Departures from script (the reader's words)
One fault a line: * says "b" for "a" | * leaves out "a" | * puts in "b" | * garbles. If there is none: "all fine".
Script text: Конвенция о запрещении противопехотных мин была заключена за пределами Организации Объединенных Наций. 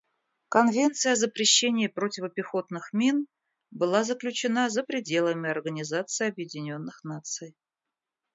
all fine